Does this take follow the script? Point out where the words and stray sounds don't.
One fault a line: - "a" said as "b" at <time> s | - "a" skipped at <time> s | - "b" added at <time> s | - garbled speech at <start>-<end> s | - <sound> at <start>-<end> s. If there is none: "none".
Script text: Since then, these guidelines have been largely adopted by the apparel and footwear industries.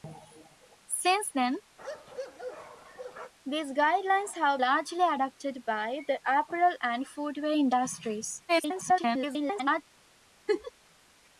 - bark at 1.8-3.3 s
- "been" skipped at 4.6 s
- garbled speech at 8.5-9.8 s
- laugh at 10.5-10.7 s